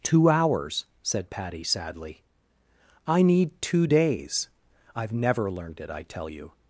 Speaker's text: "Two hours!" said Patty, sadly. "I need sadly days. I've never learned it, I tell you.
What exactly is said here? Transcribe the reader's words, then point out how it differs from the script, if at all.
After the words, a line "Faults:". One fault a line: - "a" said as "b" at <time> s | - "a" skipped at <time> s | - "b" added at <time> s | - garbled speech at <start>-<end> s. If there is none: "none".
"Two hours!" said Patty, sadly. "I need two days. I've never learned it, I tell you.
Faults:
- "sadly" said as "two" at 3.6 s